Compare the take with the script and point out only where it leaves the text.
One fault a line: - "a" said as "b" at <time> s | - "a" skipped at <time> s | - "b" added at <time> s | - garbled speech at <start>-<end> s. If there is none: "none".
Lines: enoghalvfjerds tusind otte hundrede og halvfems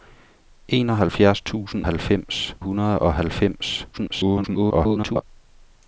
- "otte" said as "halvfems" at 1.8 s
- garbled speech at 3.9-5.2 s